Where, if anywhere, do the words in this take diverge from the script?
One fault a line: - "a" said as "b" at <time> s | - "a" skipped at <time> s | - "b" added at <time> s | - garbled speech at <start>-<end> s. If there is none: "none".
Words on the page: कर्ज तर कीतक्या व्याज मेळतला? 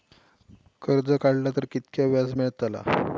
- "काडला" added at 1.2 s